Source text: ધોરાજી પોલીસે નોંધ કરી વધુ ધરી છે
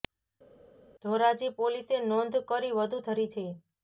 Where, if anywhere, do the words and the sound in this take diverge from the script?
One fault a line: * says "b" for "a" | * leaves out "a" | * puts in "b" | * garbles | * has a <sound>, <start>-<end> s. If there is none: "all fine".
all fine